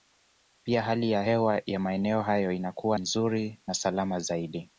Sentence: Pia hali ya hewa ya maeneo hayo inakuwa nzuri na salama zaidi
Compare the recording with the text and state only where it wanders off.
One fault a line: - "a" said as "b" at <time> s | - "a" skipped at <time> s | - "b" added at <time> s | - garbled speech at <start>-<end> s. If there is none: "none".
none